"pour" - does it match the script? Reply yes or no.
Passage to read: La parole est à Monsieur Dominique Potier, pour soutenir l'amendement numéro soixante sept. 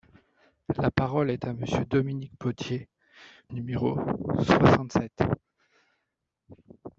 no